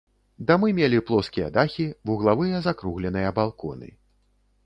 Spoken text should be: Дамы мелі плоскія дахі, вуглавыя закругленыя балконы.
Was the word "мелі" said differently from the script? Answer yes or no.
no